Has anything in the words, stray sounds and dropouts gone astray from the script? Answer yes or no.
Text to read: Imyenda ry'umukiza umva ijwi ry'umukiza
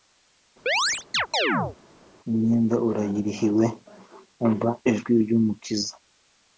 yes